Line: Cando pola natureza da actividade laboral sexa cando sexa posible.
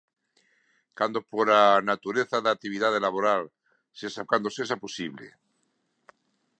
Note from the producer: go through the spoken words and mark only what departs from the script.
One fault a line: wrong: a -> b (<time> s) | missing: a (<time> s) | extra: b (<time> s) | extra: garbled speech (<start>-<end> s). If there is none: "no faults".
no faults